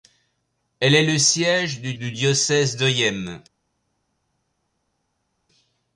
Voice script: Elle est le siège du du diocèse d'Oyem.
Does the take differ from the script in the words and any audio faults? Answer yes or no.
no